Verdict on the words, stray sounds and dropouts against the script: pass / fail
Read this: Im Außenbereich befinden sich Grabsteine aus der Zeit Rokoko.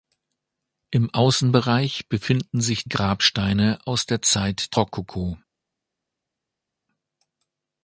pass